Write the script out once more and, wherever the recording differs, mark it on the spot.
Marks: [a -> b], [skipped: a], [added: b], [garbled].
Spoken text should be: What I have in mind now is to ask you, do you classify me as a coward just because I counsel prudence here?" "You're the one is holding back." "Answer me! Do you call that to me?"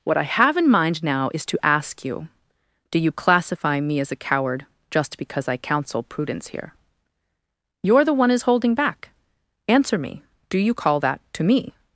What I have in mind now is to ask you, do you classify me as a coward just because I counsel prudence here?" "You're the one is holding back." "Answer me! Do you call that to me?"